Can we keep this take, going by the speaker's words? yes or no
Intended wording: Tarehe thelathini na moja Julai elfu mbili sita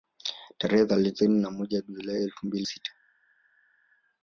yes